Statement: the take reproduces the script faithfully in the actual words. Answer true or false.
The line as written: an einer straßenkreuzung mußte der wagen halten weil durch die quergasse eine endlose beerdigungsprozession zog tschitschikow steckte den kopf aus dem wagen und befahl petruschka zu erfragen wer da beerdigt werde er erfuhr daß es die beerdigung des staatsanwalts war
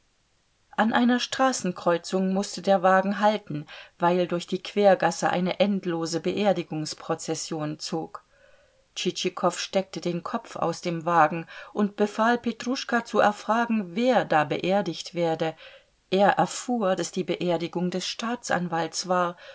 false